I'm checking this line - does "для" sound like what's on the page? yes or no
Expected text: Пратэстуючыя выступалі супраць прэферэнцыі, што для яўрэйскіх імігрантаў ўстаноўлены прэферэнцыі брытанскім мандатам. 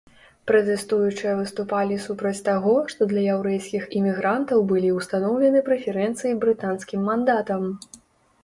yes